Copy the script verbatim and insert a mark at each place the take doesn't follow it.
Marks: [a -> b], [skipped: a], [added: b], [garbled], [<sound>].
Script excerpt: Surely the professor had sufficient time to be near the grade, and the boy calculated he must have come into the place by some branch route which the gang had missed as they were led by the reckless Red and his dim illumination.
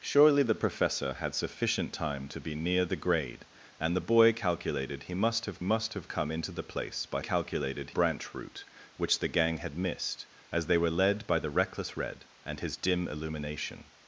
Surely the professor had sufficient time to be near the grade, and the boy calculated he must have [added: must have] come into the place by [some -> calculated] branch route which the gang had missed as they were led by the reckless Red and his dim illumination.